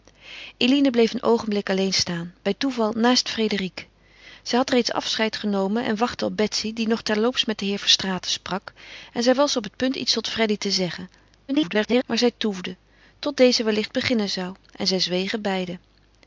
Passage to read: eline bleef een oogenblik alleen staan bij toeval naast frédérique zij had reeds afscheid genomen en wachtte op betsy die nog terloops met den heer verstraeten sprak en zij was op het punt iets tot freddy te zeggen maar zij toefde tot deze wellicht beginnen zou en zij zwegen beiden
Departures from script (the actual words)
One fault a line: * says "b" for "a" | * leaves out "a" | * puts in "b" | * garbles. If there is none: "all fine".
* garbles